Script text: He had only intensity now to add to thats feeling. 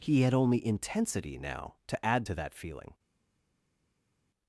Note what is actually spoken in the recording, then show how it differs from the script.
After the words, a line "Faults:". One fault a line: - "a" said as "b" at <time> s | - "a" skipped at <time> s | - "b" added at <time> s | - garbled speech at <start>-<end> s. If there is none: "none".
He had only intensity now to add to that feeling.
Faults:
- "thats" said as "that" at 2.3 s